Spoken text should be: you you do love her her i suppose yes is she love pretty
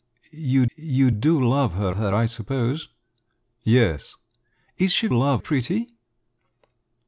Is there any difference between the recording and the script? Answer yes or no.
no